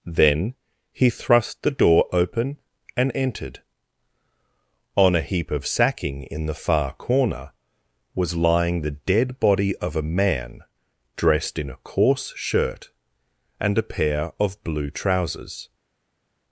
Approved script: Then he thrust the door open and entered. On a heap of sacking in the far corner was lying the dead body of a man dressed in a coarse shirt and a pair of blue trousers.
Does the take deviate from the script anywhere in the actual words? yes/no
no